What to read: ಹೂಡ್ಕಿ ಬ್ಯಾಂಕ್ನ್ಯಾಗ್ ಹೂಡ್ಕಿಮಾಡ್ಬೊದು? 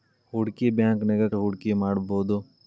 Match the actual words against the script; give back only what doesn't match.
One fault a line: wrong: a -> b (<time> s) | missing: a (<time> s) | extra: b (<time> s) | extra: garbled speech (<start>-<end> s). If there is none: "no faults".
no faults